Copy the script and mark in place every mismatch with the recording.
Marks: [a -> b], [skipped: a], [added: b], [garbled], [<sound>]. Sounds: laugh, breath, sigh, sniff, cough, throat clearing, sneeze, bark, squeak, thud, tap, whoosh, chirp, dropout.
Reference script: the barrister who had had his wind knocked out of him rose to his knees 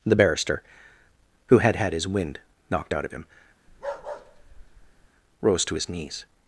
the barrister who had had his wind knocked out of him [bark] rose to his knees